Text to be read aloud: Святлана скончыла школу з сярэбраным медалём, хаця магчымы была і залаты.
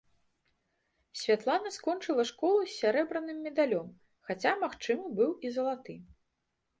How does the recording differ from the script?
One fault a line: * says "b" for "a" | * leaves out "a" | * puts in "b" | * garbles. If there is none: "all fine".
* says "быў" for "была"